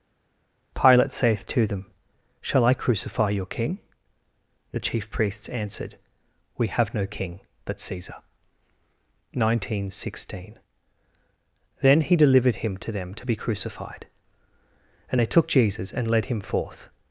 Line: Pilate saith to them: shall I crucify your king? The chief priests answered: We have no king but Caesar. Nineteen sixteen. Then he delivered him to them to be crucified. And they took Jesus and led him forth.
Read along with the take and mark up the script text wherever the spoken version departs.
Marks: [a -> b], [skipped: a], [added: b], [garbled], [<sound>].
Pilate saith to them: shall I crucify your king? The chief priests answered: We have no king but Caesar. Nineteen sixteen. Then he delivered him to them to be crucified. And they took Jesus and led him forth.